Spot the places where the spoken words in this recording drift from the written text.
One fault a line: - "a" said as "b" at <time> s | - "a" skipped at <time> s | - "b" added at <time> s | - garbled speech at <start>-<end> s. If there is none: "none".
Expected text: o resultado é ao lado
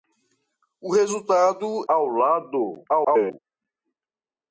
- "é" skipped at 1.9 s
- garbled speech at 2.9-3.4 s